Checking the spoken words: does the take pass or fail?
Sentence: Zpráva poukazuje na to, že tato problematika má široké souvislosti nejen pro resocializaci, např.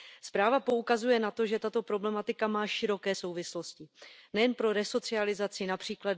pass